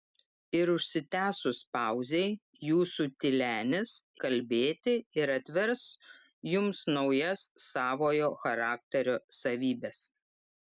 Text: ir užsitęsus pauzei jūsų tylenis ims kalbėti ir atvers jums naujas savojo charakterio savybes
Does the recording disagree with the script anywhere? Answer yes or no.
yes